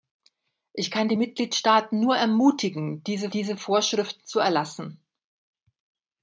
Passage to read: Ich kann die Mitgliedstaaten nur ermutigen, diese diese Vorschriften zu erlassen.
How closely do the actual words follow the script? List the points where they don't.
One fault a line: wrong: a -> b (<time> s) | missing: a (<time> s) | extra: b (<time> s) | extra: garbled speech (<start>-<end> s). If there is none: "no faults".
no faults